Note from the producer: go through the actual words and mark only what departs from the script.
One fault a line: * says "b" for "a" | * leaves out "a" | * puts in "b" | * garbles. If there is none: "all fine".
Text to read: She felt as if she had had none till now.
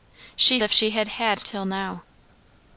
* leaves out "felt as"
* leaves out "none"